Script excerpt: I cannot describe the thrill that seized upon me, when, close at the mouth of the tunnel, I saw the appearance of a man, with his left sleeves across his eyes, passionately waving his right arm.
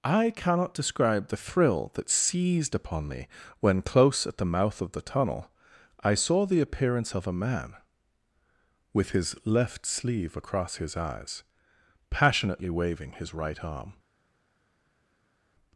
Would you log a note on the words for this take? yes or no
yes